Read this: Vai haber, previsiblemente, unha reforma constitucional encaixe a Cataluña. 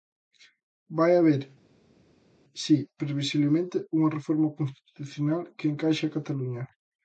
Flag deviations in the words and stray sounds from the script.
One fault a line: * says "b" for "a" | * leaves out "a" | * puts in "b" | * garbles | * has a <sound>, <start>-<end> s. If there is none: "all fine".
* puts in "si"
* puts in "que"